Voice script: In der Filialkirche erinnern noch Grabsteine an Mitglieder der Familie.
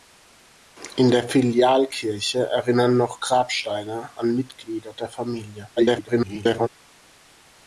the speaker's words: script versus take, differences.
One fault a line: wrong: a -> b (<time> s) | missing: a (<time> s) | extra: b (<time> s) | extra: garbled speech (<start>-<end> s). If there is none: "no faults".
extra: garbled speech (5.8-6.7 s)